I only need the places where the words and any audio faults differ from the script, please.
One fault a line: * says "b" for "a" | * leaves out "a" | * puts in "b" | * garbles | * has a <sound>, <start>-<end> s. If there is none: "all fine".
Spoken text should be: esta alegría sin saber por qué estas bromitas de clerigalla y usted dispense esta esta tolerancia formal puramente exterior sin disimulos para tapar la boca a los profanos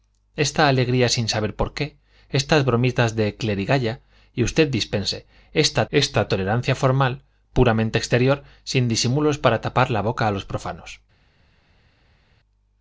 all fine